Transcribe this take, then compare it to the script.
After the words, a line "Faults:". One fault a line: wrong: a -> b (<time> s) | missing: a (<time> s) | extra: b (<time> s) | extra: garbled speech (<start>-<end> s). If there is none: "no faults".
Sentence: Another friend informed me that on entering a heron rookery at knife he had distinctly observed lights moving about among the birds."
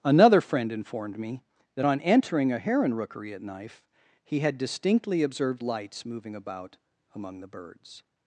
Another friend informed me that on entering a heron rookery at knife he had distinctly observed lights moving about among the birds."
Faults:
no faults